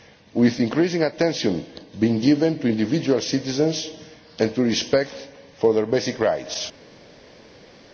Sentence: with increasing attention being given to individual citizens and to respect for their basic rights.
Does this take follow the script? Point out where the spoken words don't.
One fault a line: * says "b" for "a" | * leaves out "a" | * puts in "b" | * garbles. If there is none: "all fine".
all fine